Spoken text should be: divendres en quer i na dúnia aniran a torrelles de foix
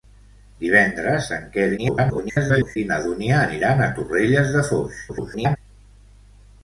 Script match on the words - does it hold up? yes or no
no